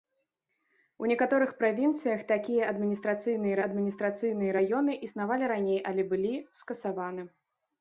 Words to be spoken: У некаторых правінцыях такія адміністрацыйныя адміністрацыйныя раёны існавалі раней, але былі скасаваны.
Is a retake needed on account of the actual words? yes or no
no